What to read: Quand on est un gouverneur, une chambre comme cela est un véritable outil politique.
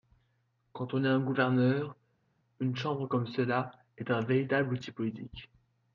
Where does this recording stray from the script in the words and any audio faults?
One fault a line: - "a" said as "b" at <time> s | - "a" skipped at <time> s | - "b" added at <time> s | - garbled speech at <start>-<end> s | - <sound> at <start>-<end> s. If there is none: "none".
none